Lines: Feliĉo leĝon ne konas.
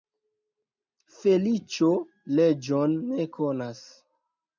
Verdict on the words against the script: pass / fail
pass